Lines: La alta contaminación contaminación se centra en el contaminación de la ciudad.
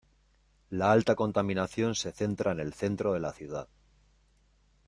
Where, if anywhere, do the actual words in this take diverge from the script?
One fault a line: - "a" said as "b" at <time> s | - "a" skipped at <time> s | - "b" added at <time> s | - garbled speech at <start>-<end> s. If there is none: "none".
- "contaminación" skipped at 1.9 s
- "contaminación" said as "centro" at 2.7 s